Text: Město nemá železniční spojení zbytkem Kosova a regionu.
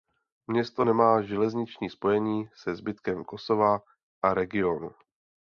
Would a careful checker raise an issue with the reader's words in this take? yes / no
yes